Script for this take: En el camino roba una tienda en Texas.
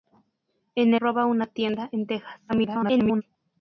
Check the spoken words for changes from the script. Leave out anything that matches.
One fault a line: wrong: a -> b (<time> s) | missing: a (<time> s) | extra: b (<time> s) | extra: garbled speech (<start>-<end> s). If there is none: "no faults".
missing: el camino (0.9 s)
extra: garbled speech (2.5-3.2 s)